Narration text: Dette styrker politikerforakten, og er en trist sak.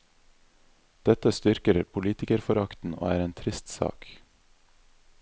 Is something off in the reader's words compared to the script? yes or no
no